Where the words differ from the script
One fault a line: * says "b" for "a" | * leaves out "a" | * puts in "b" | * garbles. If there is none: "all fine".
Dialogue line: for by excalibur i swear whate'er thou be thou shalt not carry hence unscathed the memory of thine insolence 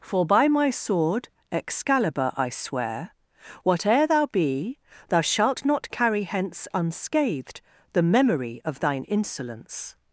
* puts in "my sword"